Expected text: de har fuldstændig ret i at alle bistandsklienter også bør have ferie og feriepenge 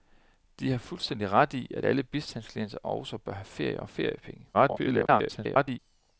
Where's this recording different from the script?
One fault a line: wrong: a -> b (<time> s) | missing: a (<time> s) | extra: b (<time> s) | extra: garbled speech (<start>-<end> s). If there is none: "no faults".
extra: garbled speech (4.5-5.8 s)